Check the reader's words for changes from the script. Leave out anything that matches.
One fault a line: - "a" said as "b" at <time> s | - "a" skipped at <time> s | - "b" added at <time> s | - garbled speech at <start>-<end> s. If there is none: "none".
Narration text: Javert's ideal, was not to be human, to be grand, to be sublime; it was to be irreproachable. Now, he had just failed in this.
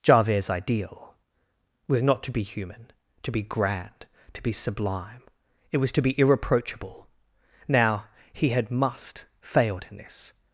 - "just" said as "must" at 8.7 s